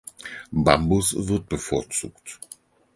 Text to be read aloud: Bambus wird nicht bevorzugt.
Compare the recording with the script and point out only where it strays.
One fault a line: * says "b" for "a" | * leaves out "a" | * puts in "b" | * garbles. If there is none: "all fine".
* leaves out "nicht"